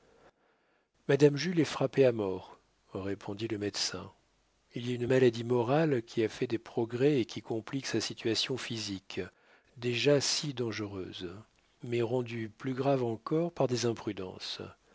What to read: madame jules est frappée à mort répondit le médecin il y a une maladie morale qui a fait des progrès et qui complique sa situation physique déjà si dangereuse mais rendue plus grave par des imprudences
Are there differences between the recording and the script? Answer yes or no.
yes